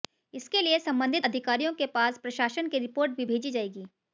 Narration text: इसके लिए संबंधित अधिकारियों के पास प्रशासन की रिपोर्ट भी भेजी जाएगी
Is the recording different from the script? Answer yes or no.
no